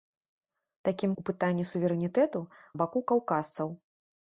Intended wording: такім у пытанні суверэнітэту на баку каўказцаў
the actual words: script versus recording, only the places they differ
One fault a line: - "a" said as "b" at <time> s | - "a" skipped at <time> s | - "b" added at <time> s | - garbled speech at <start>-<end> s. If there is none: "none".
none